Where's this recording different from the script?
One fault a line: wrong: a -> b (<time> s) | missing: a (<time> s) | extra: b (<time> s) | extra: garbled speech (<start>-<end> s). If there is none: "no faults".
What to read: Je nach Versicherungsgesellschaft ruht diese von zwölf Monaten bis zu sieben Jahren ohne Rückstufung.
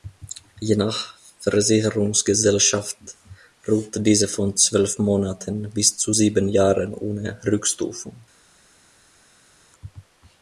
no faults